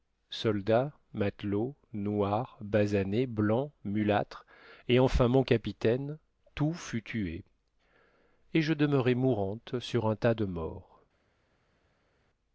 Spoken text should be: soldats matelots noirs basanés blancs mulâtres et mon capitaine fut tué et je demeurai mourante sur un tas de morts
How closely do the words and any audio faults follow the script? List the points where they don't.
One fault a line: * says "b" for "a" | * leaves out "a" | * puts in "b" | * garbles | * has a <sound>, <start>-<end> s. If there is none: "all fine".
* puts in "enfin"
* puts in "tout"